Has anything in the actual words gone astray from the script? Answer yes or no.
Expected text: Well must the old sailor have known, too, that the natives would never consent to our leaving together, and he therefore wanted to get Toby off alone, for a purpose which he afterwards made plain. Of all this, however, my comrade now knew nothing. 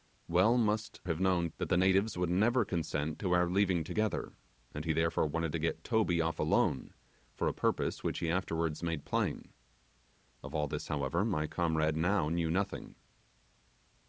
yes